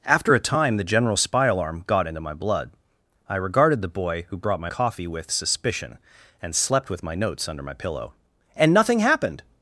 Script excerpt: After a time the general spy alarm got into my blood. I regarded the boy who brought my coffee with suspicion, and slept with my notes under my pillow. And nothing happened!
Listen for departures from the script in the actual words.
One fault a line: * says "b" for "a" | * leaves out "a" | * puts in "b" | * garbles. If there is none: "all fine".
all fine